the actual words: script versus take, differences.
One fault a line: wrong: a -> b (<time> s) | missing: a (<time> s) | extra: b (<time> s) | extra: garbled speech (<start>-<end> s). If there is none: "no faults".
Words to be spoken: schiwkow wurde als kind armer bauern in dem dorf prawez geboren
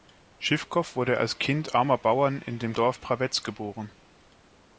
no faults